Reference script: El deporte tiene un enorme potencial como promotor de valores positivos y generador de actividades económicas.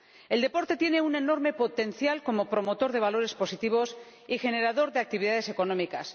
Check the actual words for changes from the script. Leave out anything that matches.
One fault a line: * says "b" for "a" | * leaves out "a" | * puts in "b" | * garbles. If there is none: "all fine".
all fine